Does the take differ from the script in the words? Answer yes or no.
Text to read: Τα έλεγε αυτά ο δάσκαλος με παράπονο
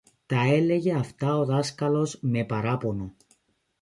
no